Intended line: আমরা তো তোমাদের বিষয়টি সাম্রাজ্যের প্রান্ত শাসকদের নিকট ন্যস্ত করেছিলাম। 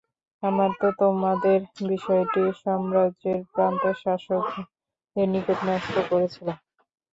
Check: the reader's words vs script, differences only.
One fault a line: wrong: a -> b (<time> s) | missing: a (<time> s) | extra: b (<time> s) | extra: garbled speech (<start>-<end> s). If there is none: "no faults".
no faults